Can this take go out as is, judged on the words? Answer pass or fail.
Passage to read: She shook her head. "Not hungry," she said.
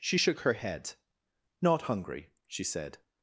pass